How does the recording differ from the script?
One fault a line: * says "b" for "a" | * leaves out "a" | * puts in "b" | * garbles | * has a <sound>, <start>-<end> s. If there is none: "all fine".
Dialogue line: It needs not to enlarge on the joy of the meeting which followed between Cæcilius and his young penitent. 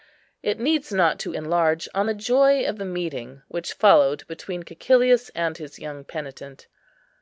all fine